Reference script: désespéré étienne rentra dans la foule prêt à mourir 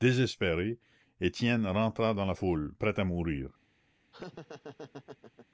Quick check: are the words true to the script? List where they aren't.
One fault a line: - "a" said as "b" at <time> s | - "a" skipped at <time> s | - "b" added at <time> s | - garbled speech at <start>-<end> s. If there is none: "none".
none